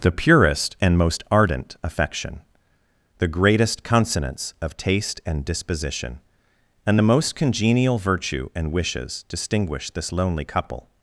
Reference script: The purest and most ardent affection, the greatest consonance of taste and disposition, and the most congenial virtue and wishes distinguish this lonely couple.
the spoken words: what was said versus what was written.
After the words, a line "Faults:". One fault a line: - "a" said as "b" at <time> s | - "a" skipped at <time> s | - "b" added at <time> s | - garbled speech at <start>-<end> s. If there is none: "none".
The purest and most ardent affection, the greatest consonance of taste and disposition, and the most congenial virtue and wishes distinguish this lonely couple.
Faults:
none